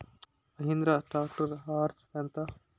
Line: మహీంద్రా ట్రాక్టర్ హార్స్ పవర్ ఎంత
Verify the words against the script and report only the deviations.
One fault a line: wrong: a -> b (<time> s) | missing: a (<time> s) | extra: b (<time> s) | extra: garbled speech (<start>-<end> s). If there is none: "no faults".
missing: పవర్ (2.0 s)